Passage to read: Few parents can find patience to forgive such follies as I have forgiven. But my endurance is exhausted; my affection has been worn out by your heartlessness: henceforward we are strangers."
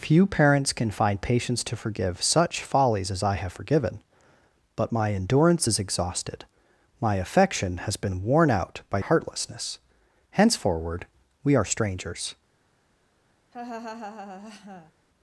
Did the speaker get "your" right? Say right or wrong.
wrong